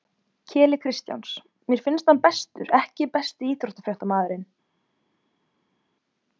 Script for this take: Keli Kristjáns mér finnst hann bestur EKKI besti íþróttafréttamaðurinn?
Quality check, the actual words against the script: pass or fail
pass